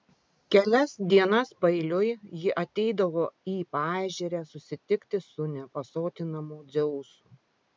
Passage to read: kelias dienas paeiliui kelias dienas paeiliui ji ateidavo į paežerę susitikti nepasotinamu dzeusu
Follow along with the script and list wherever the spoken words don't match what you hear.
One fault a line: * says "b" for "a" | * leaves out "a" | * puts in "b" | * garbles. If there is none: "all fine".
* leaves out "kelias dienas paeiliui"
* puts in "su"